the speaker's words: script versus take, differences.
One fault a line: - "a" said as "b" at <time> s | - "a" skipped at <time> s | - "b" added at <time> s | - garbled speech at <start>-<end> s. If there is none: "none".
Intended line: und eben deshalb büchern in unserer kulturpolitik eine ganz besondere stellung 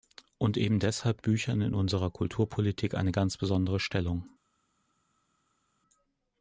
none